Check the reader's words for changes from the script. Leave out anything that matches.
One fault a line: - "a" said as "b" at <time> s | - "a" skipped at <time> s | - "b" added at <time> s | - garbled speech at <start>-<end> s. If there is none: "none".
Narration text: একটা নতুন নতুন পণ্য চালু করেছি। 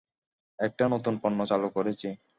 - "নতুন" skipped at 1.1 s